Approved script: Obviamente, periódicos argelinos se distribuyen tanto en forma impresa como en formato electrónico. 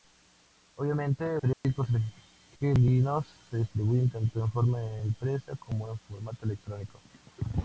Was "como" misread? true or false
false